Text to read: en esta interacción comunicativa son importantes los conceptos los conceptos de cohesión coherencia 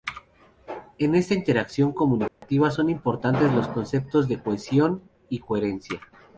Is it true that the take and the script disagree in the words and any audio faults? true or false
true